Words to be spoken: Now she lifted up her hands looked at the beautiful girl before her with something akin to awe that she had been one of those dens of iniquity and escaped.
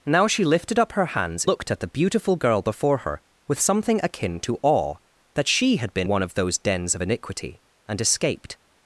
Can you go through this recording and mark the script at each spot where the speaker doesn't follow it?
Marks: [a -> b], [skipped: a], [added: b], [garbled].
Now she lifted up her hands looked at the beautiful girl before her with something akin to awe that she had been one of those dens of iniquity and escaped.